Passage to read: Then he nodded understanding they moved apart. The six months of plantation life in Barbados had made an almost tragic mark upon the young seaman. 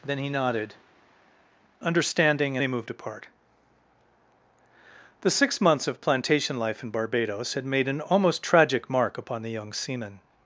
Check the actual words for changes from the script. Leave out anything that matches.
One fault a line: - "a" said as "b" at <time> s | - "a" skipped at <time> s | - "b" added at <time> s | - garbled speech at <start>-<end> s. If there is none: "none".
none